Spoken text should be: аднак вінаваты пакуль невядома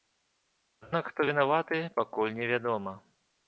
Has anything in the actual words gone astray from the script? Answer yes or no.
yes